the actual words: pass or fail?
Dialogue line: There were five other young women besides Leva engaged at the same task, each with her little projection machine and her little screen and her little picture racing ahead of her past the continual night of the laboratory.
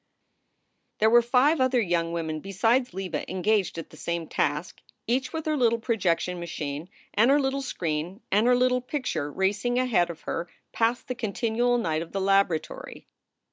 pass